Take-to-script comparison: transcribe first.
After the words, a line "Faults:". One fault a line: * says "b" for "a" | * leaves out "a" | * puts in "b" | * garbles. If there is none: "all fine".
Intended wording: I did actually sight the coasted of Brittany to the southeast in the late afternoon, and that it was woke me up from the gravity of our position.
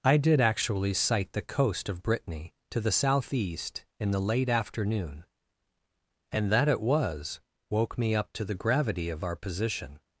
I did actually sight the coast of Brittany to the southeast in the late afternoon, and that it was woke me up to the gravity of our position.
Faults:
* says "coast" for "coasted"
* says "to" for "from"